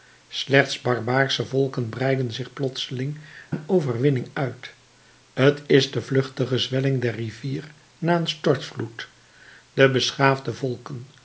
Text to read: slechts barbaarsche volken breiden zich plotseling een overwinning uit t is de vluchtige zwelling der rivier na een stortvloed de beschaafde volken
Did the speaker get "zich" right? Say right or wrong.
right